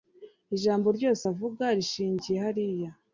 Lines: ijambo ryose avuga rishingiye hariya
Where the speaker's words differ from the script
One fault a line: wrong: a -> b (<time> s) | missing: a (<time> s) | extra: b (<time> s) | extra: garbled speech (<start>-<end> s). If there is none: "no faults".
no faults